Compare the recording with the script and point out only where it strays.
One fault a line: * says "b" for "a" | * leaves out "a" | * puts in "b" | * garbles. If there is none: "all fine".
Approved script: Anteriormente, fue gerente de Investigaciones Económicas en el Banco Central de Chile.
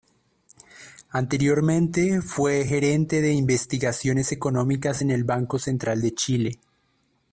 all fine